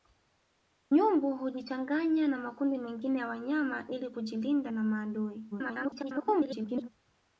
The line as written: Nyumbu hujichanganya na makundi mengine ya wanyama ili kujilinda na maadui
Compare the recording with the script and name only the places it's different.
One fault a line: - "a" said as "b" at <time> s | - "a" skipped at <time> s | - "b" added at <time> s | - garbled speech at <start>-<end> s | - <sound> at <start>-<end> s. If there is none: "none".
- garbled speech at 5.5-6.9 s